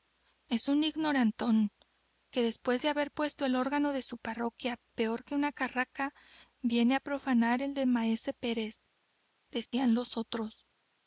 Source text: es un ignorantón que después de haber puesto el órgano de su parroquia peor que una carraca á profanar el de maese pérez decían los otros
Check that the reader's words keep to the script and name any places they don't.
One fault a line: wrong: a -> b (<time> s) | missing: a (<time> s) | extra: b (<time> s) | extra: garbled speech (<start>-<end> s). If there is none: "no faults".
extra: viene (6.6 s)